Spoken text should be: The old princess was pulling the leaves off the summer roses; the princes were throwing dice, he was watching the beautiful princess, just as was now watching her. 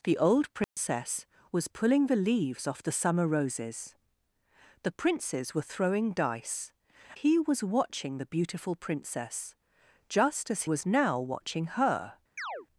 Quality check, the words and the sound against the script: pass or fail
fail